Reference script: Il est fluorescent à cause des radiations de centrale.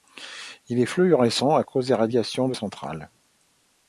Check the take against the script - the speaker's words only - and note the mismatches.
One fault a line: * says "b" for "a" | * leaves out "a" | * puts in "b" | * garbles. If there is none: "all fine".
all fine